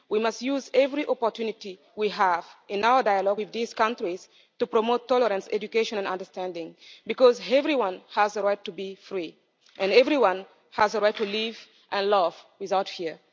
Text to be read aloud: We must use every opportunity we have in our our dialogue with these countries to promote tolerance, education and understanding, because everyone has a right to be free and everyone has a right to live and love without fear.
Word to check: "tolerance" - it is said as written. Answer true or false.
true